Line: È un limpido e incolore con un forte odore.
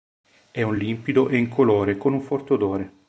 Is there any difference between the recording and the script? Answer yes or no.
no